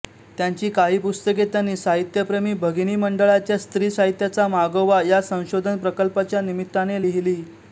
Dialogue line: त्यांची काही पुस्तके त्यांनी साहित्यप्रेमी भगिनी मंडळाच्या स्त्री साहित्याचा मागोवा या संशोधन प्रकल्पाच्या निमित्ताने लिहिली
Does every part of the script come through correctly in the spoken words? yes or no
yes